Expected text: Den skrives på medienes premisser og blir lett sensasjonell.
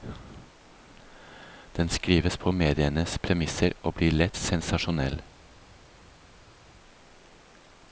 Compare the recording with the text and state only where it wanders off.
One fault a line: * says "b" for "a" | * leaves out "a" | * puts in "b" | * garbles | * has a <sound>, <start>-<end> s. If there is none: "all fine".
all fine